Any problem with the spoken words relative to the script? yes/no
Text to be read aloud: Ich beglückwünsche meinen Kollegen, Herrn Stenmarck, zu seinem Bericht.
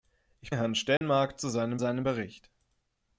yes